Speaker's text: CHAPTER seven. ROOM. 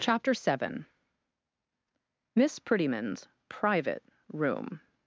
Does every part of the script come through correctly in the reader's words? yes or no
no